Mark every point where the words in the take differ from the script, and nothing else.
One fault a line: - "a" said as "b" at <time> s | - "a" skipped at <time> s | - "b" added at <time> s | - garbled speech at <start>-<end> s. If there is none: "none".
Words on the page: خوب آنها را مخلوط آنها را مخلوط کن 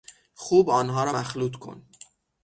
- "آنها را مخلوط" skipped at 1.6 s